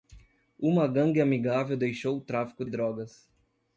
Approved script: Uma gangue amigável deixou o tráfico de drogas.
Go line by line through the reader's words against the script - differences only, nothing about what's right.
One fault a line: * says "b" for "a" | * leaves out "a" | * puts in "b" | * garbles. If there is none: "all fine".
* leaves out "de"